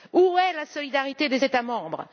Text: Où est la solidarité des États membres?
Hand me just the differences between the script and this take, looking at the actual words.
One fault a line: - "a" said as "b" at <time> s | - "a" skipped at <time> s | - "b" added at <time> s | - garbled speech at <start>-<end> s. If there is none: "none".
none